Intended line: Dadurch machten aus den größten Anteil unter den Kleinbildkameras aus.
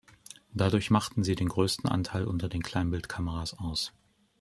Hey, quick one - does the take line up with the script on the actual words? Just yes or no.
no